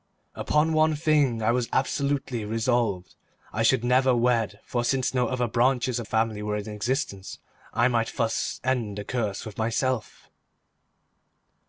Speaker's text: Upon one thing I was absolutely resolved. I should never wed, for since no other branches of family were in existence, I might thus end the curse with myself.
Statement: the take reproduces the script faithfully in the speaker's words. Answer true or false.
true